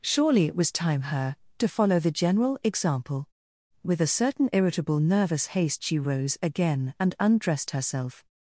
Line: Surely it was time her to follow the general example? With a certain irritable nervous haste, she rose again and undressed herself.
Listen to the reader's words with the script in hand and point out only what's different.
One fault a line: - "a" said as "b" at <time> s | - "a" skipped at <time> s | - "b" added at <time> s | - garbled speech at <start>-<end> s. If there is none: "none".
none